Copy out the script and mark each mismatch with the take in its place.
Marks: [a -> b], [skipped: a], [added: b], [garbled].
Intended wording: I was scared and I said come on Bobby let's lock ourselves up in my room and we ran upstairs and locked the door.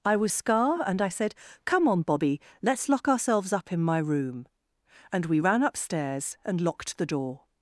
I was [scared -> scar] and I said come on Bobby let's lock ourselves up in my room and we ran upstairs and locked the door.